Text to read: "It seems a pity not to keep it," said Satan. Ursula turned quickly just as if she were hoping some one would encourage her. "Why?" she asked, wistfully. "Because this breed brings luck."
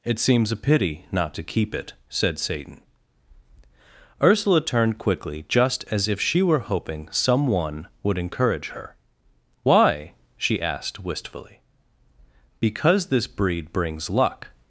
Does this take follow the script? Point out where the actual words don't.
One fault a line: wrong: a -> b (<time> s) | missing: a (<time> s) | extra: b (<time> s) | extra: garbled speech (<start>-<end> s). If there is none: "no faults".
no faults